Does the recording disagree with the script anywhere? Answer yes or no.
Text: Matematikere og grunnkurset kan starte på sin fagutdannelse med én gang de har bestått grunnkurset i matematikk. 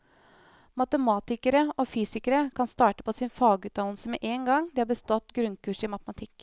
yes